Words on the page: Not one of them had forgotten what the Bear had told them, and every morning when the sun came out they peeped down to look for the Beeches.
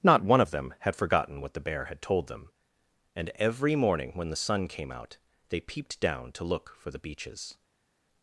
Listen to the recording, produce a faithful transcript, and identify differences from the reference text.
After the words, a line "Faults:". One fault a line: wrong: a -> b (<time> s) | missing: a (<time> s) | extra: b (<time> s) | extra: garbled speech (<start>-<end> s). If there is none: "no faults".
Not one of them had forgotten what the Bear had told them, and every morning when the sun came out they peeped down to look for the Beeches.
Faults:
no faults